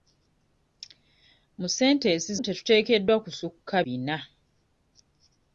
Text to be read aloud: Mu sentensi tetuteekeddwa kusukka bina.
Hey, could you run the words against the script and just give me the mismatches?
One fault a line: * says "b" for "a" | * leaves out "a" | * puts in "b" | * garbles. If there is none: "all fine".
all fine